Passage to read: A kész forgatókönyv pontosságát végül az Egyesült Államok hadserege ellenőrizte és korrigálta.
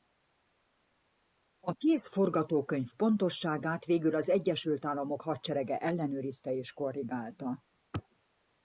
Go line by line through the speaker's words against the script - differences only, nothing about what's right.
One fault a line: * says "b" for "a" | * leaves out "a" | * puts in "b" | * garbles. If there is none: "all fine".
all fine